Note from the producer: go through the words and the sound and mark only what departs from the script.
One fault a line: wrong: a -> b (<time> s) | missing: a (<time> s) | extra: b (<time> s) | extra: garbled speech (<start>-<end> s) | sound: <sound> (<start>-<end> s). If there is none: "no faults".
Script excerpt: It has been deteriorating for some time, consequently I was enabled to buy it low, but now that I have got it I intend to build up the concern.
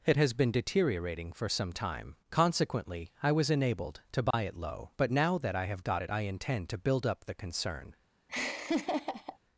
sound: dropout (4.3-4.3 s)
sound: laugh (8.3-9.4 s)